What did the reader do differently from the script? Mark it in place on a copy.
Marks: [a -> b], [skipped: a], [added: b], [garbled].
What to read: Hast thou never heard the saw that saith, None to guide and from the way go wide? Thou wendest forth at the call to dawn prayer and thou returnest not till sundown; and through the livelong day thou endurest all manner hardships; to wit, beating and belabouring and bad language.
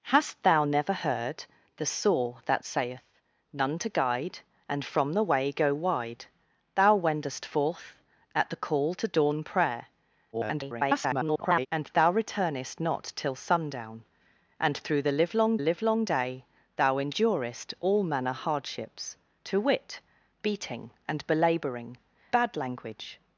Hast thou never heard the saw that saith, None to guide and from the way go wide? Thou wendest forth at the call to dawn prayer [garbled] and thou returnest not till sundown; and through the livelong [added: livelong] day thou endurest all manner hardships; to wit, beating and belabouring [skipped: and] bad language.